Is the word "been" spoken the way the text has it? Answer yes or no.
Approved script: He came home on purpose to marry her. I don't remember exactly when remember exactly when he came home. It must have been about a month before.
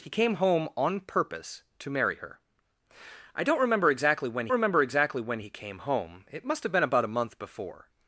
yes